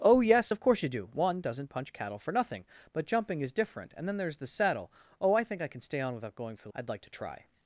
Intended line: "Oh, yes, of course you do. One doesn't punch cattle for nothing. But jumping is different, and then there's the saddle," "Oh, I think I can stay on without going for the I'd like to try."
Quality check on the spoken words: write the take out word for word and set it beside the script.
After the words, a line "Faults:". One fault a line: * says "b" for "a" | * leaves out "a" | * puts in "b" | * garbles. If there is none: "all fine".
"Oh, yes, of course you do. One doesn't punch cattle for nothing. But jumping is different, and then there's the saddle," "Oh, I think I can stay on without going for the I'd like to try."
Faults:
all fine